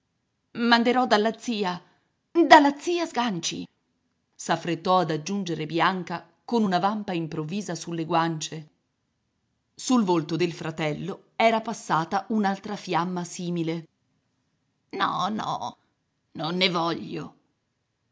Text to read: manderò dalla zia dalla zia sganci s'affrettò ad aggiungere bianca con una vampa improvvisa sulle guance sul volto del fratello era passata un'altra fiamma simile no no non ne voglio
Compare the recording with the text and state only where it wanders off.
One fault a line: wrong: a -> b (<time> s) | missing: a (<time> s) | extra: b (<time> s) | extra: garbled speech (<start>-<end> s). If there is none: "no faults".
no faults